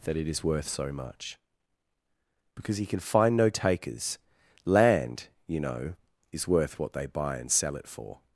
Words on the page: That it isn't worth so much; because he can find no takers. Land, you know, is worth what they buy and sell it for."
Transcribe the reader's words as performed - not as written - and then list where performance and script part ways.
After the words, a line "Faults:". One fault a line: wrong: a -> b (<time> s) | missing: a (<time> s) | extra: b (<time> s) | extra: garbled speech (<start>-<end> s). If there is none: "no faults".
That it is worth so much; because he can find no takers. Land, you know, is worth what they buy and sell it for."
Faults:
wrong: isn't -> is (0.3 s)